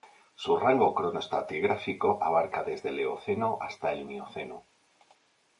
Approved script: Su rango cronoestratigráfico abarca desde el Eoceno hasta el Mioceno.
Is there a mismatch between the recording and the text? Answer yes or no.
no